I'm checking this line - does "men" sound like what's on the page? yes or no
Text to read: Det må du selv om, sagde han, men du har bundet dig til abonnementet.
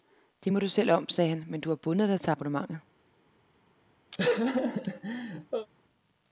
yes